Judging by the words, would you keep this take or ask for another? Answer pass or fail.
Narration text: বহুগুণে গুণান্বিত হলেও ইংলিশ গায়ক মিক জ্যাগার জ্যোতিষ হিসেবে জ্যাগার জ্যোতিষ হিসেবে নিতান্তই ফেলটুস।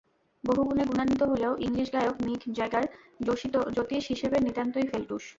fail